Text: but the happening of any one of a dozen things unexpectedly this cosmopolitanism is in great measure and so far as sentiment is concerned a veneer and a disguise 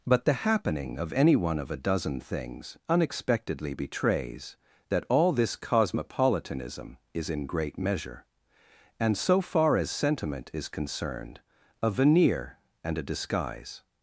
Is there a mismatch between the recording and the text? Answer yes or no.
yes